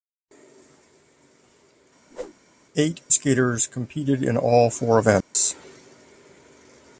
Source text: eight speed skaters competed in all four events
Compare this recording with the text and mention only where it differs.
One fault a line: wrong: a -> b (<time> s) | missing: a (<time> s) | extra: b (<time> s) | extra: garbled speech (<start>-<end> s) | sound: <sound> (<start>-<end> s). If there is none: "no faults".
sound: whoosh (2.1-2.4 s)
missing: speed (3.0 s)
sound: dropout (5.2-5.4 s)